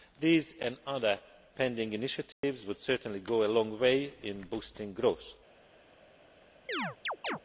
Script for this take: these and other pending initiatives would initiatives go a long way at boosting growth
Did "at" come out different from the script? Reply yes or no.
yes